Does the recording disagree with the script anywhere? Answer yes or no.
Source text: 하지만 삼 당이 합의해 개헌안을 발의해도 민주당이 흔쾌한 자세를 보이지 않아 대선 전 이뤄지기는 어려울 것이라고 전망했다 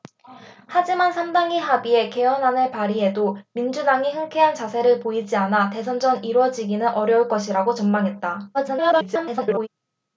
yes